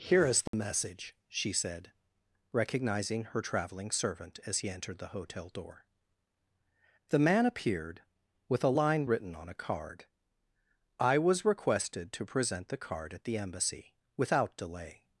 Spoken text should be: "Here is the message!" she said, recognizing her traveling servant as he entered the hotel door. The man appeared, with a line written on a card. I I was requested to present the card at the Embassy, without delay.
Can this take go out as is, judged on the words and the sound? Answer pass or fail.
fail